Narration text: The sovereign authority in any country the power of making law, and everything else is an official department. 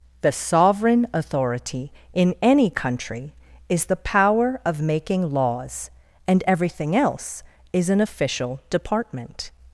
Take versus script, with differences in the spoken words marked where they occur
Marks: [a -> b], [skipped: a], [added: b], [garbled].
The sovereign authority in any country [added: is] the power of making [law, -> laws] and everything else is an official department.